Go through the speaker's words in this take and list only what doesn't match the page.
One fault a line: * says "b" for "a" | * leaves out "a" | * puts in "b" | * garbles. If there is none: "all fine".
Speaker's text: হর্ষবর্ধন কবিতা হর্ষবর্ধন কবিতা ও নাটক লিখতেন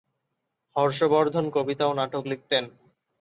* leaves out "হর্ষবর্ধন কবিতা"